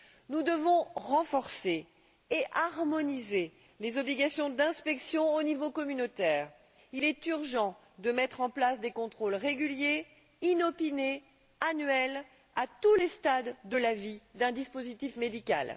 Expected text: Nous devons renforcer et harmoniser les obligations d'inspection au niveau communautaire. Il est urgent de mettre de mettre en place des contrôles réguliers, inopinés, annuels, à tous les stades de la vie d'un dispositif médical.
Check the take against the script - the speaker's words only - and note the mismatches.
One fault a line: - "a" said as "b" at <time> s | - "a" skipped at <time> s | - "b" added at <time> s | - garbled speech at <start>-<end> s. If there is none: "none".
- "de mettre" skipped at 8.4 s